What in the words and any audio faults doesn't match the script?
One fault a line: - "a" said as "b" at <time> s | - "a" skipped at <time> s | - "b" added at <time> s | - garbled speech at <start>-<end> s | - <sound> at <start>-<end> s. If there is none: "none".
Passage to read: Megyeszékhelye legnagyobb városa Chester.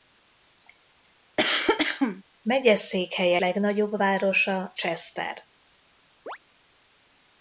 - cough at 1.4-2.2 s
- chirp at 6.3-6.4 s